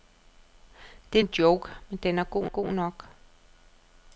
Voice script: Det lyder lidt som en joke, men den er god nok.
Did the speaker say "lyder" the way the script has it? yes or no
no